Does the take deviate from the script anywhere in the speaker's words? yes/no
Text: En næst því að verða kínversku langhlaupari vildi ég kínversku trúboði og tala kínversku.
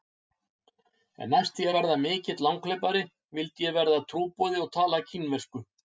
yes